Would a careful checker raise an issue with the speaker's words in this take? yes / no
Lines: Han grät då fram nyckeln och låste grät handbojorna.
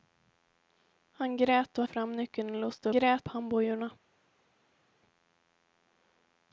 no